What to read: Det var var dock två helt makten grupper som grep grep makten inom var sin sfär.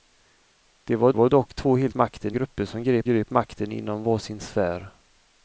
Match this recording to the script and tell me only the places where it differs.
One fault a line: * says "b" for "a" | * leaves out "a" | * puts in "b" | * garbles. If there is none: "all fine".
all fine